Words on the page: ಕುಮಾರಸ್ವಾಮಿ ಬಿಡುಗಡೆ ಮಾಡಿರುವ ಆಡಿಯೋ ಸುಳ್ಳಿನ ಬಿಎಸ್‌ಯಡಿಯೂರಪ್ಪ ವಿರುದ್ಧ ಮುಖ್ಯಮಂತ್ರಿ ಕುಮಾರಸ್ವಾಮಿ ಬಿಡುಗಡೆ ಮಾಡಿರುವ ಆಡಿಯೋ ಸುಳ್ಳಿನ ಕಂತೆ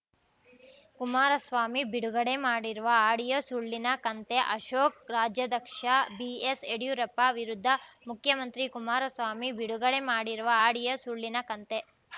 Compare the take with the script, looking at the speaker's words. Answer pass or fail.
fail